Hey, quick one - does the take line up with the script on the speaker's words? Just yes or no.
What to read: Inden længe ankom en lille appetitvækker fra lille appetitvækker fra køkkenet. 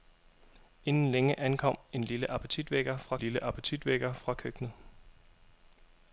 yes